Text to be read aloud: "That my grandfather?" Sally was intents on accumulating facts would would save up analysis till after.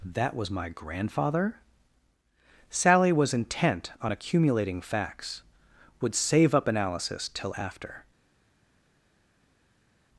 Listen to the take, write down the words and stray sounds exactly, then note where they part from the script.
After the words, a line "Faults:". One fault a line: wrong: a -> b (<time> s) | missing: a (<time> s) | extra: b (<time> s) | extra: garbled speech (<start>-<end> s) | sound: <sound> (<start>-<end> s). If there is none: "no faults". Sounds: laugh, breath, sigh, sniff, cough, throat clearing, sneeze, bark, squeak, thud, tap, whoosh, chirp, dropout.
"That was my grandfather?" Sally was intent on accumulating facts would save up analysis till after.
Faults:
extra: was (0.3 s)
wrong: intents -> intent (3.4 s)
missing: would (6.1 s)